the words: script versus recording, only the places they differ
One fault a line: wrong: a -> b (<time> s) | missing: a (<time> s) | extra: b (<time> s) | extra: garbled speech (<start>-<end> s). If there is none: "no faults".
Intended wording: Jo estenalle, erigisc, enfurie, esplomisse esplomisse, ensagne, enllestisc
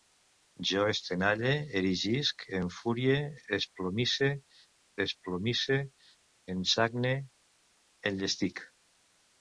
no faults